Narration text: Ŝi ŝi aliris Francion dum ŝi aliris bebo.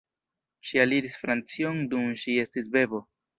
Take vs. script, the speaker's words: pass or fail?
fail